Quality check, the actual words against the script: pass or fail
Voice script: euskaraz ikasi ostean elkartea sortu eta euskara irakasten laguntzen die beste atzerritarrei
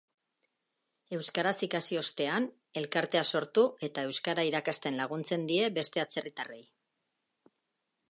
pass